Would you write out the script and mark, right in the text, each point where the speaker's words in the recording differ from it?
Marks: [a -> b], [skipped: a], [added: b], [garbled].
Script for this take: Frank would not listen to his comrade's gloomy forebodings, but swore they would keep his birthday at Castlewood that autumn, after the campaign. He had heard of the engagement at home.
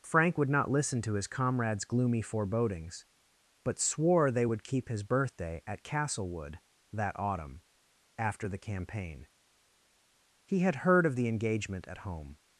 Frank would not listen to his comrade's gloomy forebodings, but swore they would keep his birthday at Castlewood that autumn, after the campaign. He had heard of the engagement at home.